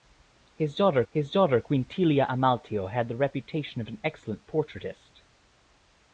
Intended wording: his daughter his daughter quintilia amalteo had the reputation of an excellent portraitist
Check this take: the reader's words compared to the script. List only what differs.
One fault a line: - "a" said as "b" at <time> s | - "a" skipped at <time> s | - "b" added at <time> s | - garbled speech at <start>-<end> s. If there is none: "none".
none